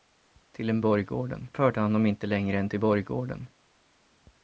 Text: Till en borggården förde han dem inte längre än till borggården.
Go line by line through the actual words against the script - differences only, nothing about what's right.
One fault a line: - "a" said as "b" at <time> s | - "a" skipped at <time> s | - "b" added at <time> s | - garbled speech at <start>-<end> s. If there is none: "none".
none